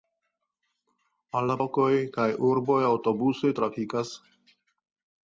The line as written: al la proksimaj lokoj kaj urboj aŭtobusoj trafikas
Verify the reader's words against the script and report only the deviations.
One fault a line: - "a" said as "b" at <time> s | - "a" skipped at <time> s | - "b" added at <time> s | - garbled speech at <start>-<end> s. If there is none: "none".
- "proksimaj" skipped at 1.6 s